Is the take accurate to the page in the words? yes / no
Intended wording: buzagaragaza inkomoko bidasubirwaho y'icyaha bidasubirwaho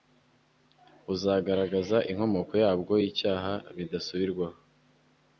no